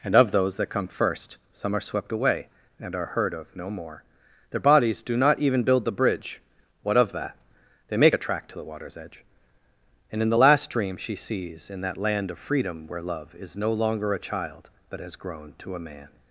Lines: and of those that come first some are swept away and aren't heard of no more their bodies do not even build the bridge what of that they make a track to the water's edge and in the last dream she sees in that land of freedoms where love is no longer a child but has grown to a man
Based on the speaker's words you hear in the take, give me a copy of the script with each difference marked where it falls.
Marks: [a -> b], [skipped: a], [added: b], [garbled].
and of those that come first some are swept away and [aren't -> are] heard of no more their bodies do not even build the bridge what of that they make a track to the water's edge and in the last dream she sees in that land of [freedoms -> freedom] where love is no longer a child but has grown to a man